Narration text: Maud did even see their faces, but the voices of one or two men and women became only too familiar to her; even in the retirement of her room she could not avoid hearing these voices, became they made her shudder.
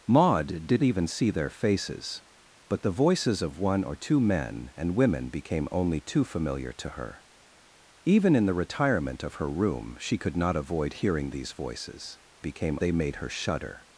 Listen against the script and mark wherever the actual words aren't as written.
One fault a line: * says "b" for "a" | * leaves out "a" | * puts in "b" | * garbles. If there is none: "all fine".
all fine